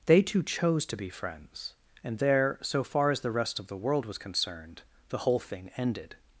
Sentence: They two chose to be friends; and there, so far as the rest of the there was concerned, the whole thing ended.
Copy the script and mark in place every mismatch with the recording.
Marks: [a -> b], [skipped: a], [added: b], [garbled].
They two chose to be friends; and there, so far as the rest of the [there -> world] was concerned, the whole thing ended.